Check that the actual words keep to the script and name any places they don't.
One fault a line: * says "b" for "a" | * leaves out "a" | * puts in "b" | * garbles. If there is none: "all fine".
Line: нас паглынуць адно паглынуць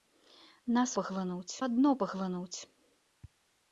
all fine